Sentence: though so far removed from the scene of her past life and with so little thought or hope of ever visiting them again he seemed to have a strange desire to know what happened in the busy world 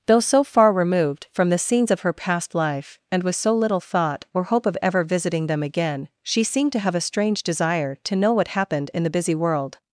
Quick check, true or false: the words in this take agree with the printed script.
false